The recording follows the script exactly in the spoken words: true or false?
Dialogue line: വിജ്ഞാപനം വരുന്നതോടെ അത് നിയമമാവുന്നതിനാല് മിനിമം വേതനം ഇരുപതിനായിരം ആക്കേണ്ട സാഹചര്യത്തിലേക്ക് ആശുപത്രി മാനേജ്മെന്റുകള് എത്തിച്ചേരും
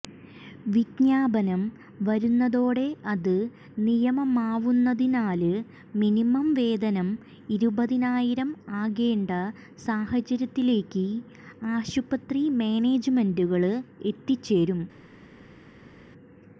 true